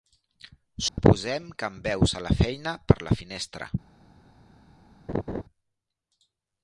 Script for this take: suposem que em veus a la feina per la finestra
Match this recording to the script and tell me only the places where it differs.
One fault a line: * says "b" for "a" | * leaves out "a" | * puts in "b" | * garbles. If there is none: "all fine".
all fine